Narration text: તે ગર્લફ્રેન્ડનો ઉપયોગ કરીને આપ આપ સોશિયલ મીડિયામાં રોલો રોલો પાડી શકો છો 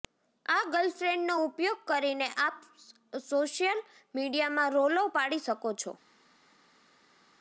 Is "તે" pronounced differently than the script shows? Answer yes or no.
yes